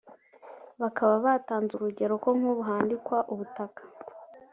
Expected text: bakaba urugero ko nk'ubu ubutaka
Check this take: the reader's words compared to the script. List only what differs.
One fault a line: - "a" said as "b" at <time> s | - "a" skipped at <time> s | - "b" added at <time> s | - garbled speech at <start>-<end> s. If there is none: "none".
- "batanze" added at 1.2 s
- "handikwa" added at 2.7 s